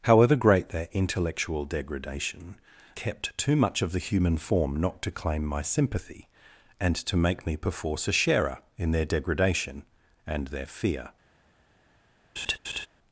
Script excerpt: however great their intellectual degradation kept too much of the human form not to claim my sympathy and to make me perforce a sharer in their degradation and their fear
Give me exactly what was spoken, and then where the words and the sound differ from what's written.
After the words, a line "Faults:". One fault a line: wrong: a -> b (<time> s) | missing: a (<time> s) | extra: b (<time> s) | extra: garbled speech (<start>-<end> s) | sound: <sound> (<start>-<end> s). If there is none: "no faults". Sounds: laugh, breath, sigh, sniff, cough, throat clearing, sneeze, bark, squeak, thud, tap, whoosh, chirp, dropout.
however great their intellectual degradation kept too much of the human form not to claim my sympathy and to make me perforce a sharer in their degradation and their fear
Faults:
sound: laugh (12.4-12.9 s)